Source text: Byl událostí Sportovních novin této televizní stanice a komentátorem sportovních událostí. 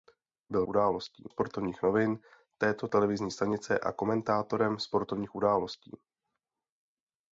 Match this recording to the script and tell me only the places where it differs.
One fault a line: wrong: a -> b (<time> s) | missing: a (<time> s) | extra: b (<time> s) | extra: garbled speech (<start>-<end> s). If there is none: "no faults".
no faults